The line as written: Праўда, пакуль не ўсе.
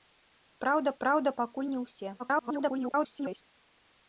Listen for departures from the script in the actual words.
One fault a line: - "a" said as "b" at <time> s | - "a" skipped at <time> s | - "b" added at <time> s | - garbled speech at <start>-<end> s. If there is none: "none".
- "праўда" added at 1.0 s
- garbled speech at 2.2-3.4 s